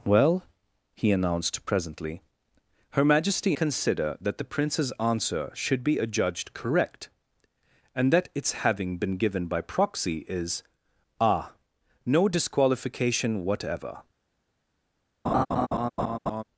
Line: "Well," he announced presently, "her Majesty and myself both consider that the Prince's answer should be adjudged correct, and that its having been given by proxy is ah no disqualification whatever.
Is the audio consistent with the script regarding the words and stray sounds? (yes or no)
no